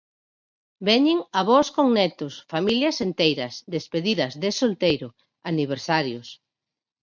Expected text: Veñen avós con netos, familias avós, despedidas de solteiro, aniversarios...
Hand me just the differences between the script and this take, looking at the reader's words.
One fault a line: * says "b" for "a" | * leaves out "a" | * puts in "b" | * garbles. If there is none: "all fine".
* says "enteiras" for "avós"